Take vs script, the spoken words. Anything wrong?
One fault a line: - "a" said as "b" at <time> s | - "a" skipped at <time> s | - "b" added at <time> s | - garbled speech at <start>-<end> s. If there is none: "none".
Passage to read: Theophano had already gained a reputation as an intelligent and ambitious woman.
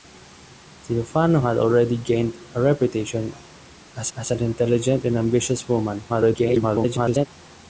- "as" added at 4.2 s
- garbled speech at 6.1-7.3 s